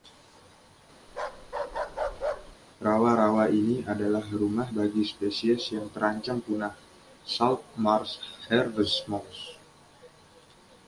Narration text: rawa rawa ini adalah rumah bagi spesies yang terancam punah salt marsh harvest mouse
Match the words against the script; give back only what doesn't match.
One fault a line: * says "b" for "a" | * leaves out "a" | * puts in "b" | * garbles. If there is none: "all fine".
all fine